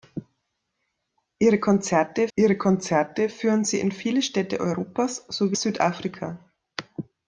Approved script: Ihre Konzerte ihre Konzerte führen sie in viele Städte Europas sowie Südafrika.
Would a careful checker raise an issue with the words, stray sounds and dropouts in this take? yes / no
no